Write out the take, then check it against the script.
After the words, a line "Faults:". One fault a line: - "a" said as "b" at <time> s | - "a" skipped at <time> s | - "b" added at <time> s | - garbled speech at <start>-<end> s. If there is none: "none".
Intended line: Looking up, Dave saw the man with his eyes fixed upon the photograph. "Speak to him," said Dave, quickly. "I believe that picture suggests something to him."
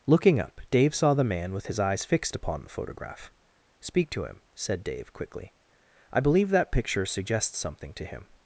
Looking up, Dave saw the man with his eyes fixed upon the photograph. "Speak to him," said Dave, quickly. "I believe that picture suggests something to him."
Faults:
none